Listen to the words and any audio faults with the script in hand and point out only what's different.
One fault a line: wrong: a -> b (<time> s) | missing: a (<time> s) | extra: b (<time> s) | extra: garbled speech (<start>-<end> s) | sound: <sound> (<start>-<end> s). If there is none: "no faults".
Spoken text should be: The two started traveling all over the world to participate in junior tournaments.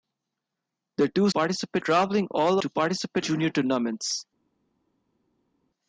wrong: started -> participate (1.3 s)
missing: over the world (2.6 s)
missing: in (3.3 s)